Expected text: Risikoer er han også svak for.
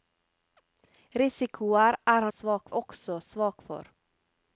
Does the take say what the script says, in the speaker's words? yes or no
no